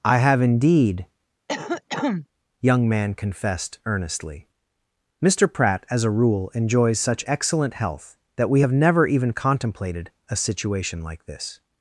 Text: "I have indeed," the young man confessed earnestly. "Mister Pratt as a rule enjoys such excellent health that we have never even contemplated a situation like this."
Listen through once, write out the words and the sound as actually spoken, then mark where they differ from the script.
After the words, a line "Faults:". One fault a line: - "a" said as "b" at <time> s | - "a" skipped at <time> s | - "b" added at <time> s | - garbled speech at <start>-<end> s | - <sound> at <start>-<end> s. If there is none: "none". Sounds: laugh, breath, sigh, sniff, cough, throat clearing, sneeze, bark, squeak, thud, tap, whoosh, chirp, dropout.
"I have indeed," young man confessed earnestly. "Mister Pratt as a rule enjoys such excellent health that we have never even contemplated a situation like this."
Faults:
- "the" skipped at 1.1 s
- cough at 1.5-2.3 s